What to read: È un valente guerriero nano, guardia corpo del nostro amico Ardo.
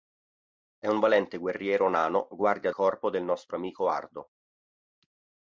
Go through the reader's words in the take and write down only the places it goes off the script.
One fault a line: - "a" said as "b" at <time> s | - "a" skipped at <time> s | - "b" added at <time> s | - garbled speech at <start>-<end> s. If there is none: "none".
none